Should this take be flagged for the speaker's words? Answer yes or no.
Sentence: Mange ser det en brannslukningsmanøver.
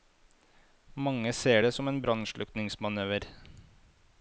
yes